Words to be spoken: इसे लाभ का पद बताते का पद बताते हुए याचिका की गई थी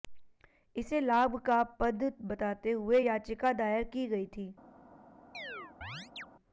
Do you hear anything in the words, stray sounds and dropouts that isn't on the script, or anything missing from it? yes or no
yes